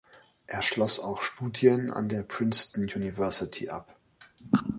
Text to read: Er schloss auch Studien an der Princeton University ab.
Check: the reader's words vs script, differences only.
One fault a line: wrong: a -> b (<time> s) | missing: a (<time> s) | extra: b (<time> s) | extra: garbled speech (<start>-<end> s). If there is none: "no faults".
no faults